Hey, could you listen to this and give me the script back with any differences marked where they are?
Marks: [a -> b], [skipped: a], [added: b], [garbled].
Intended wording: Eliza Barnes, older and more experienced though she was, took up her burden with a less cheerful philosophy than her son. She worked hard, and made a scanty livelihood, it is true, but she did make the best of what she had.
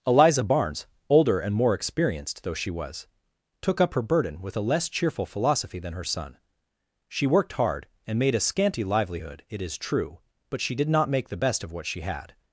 Eliza Barnes, older and more experienced though she was, took up her burden with a less cheerful philosophy than her son. She worked hard, and made a scanty livelihood, it is true, but she did [added: not] make the best of what she had.